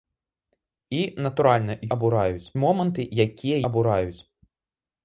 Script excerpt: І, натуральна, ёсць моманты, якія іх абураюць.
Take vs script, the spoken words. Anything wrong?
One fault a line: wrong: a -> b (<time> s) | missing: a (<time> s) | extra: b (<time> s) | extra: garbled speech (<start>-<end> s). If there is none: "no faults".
wrong: ёсць -> абураюць (2.0 s)
missing: іх (3.6 s)